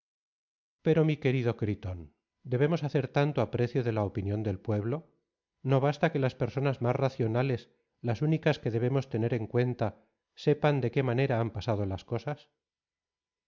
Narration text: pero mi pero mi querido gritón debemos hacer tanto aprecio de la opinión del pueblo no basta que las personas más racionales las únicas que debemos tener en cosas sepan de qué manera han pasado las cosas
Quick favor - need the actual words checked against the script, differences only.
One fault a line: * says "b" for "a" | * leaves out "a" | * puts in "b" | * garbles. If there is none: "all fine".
* leaves out "pero mi"
* says "cuenta" for "cosas"